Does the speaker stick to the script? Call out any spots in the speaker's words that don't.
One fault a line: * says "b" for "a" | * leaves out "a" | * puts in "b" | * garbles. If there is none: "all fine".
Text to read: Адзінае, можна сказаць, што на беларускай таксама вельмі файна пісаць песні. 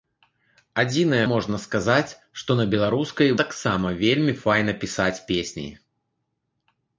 all fine